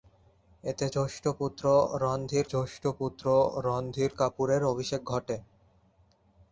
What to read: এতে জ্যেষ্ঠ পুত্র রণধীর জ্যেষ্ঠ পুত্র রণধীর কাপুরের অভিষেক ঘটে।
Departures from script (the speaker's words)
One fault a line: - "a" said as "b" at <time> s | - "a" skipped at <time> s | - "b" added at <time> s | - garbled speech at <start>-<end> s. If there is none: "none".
none